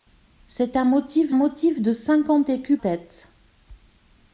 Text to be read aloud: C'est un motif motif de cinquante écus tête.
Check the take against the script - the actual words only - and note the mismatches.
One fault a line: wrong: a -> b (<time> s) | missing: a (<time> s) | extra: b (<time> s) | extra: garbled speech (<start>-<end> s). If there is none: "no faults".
no faults